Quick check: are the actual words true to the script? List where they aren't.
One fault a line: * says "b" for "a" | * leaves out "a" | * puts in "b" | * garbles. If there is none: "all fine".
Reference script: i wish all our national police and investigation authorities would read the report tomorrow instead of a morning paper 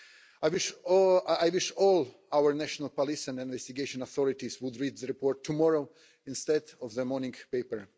* says "the" for "a"